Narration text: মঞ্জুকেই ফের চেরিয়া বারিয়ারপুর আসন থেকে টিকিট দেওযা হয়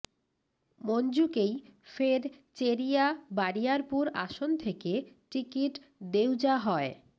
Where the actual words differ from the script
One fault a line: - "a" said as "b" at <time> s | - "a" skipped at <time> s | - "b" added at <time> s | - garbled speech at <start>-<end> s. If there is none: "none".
none